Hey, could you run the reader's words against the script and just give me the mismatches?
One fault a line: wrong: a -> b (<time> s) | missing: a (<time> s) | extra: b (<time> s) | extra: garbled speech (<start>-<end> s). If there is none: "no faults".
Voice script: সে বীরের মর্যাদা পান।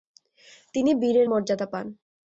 wrong: সে -> তিনি (0.7 s)